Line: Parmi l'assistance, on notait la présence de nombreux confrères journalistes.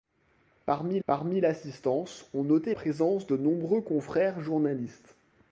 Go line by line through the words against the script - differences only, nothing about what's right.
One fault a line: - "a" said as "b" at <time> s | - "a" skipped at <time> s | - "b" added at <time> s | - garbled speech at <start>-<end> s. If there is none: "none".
- "parmi" added at 1.1 s
- "la" skipped at 2.7 s